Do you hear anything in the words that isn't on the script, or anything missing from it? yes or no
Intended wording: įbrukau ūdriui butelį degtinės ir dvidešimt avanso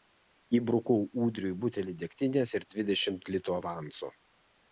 yes